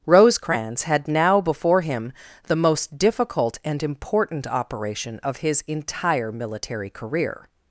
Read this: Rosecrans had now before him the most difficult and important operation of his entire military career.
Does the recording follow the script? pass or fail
pass